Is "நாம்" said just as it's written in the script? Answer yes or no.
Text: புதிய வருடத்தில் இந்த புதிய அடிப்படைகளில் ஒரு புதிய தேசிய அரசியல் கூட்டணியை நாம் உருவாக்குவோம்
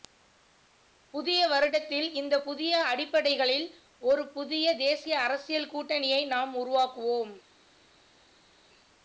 yes